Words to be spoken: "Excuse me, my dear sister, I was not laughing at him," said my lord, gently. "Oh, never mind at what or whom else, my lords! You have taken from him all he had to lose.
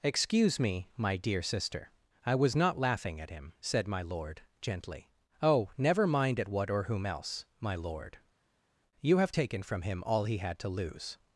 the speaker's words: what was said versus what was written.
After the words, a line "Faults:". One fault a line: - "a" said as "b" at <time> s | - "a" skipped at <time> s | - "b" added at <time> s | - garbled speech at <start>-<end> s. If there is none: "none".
"Excuse me, my dear sister, I was not laughing at him," said my lord, gently. "Oh, never mind at what or whom else, my lord! You have taken from him all he had to lose.
Faults:
- "lords" said as "lord" at 7.8 s